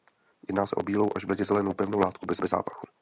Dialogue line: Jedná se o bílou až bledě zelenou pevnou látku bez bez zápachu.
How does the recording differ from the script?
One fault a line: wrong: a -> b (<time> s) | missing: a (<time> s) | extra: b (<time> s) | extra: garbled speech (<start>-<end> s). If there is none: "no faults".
no faults